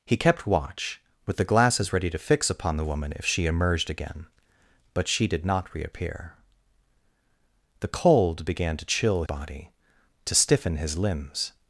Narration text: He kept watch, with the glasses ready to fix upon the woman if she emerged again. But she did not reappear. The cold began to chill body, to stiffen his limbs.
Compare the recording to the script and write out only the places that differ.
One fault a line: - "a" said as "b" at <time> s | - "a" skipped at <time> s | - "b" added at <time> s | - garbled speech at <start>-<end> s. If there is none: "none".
none